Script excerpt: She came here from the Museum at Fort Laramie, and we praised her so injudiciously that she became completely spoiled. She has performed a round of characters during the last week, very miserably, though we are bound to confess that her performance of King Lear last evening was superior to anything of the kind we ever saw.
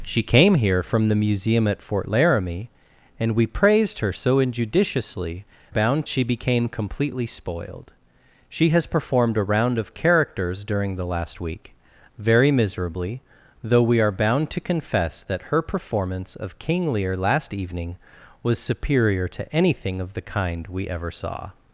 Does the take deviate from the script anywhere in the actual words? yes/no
yes